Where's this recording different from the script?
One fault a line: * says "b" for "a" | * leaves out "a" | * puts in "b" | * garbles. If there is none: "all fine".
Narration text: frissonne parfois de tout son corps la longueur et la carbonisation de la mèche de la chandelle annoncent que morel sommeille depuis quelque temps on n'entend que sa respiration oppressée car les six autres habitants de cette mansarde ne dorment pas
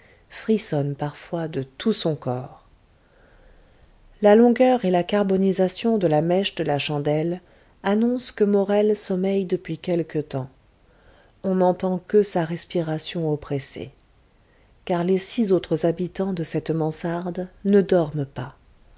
all fine